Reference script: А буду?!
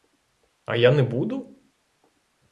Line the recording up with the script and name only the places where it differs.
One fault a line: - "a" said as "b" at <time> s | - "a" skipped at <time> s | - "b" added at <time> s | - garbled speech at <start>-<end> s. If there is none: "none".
- "я не" added at 0.8 s